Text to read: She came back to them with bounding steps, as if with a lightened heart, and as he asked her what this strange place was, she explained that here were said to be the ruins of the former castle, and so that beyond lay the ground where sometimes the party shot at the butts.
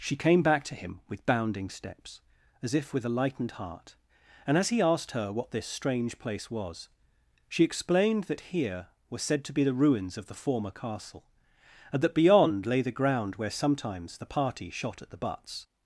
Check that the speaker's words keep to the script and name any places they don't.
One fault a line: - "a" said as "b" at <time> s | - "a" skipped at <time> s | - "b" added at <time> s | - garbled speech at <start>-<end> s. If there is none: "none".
- "them" said as "him" at 0.7 s
- "so" skipped at 12.0 s